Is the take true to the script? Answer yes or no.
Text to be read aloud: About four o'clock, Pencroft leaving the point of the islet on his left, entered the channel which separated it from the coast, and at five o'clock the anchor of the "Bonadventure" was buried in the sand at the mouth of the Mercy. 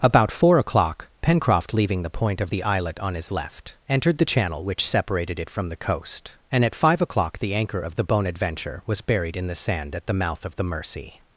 yes